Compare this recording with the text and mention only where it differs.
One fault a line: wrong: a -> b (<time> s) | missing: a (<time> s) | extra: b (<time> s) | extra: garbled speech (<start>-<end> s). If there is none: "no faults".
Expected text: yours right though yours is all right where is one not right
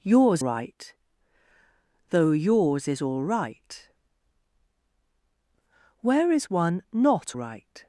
no faults